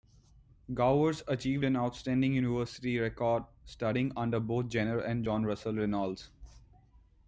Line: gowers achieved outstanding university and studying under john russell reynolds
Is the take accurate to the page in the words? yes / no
no